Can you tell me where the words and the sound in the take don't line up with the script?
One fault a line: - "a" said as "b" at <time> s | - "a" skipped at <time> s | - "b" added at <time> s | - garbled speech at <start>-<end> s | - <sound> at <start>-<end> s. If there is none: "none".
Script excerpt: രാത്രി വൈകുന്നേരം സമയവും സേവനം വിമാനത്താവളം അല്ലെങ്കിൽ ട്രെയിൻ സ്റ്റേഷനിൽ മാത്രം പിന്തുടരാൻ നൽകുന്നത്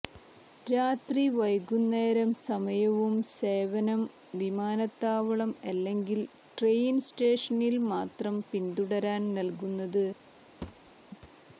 - thud at 10.6-10.9 s